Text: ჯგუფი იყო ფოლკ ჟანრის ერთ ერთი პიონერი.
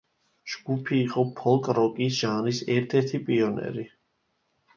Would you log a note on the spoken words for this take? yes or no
yes